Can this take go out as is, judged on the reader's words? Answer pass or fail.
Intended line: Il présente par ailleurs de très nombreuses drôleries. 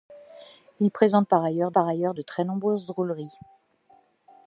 fail